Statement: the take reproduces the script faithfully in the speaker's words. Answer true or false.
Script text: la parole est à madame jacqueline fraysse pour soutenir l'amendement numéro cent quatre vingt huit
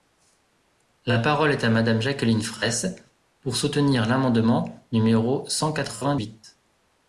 true